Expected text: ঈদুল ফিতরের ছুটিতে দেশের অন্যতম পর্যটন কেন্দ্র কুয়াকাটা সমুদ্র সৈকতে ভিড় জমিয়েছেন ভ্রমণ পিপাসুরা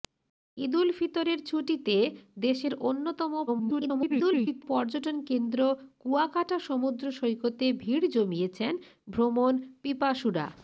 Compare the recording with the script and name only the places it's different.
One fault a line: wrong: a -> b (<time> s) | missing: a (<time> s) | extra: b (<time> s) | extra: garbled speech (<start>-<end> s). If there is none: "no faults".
extra: garbled speech (3.5-4.6 s)